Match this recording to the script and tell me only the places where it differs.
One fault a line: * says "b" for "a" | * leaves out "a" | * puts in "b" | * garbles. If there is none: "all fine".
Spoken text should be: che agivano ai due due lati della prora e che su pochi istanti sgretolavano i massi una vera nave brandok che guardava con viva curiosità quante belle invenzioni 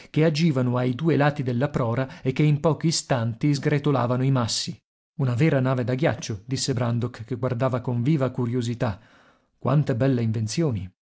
* leaves out "due"
* says "in" for "su"
* puts in "da ghiaccio disse"